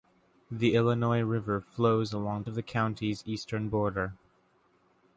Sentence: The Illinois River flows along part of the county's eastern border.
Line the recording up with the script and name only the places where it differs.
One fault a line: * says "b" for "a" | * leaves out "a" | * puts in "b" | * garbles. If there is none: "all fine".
* leaves out "part"